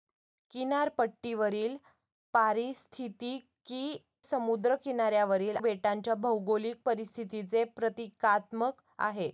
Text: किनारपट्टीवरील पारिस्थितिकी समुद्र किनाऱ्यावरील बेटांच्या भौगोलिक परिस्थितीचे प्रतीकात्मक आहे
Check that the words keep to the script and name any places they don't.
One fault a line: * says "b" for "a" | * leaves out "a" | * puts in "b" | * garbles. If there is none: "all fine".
all fine